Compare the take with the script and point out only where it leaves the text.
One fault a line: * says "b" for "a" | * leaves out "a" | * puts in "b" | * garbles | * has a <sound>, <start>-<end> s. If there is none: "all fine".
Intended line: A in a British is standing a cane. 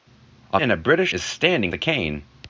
all fine